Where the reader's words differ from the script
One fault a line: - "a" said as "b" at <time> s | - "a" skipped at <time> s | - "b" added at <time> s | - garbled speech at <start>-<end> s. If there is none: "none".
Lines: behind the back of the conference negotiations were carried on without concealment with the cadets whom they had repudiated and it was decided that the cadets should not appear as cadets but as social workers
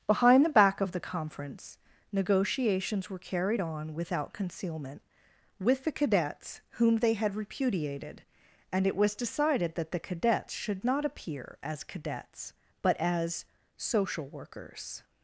none